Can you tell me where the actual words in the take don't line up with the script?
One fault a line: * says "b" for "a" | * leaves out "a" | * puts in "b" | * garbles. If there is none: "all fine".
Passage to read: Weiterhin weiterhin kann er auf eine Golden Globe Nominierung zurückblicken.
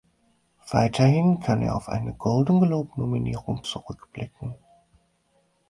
* leaves out "weiterhin"